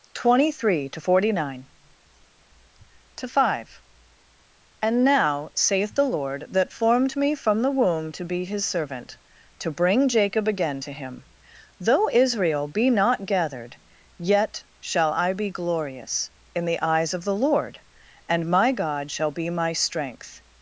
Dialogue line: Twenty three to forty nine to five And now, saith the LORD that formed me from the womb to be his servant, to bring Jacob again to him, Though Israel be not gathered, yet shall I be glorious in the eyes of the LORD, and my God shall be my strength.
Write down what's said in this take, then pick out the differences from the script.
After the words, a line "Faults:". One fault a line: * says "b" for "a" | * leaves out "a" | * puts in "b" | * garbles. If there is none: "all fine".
Twenty three to forty nine to five And now, saith the LORD that formed me from the womb to be his servant, to bring Jacob again to him, Though Israel be not gathered, yet shall I be glorious in the eyes of the LORD, and my God shall be my strength.
Faults:
all fine